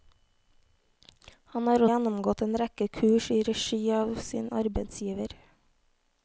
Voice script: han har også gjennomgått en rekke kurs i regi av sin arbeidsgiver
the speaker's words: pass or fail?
fail